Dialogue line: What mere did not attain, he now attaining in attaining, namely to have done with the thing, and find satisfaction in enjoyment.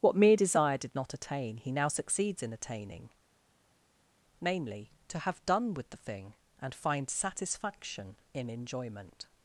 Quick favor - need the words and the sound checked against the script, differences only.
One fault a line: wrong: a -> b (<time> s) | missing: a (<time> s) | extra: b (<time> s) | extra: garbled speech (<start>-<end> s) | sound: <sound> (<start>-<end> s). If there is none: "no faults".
extra: desire (0.3 s)
wrong: attaining -> succeeds (1.9 s)